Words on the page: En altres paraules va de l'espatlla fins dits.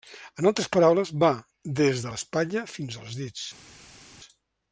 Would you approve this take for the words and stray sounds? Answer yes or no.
no